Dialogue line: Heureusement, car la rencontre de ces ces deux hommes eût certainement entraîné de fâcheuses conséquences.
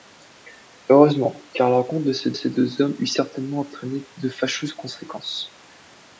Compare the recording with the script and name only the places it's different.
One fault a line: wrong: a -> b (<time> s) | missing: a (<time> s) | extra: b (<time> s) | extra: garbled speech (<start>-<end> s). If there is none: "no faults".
no faults